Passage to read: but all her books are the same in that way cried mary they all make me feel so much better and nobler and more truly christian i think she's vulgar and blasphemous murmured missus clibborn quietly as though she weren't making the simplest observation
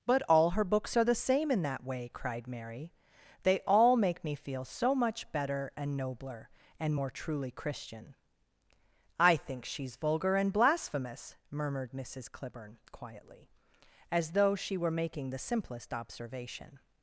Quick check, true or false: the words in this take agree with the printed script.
false